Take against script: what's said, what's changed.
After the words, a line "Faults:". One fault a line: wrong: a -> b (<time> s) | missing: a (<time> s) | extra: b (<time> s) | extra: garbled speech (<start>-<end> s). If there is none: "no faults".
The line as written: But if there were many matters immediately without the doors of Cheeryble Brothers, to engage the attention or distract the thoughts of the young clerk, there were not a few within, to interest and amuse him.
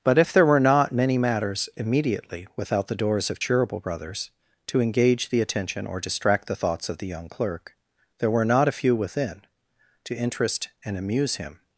But if there were not many matters immediately without the doors of Cheeryble Brothers, to engage the attention or distract the thoughts of the young clerk, there were not a few within, to interest and amuse him.
Faults:
extra: not (0.6 s)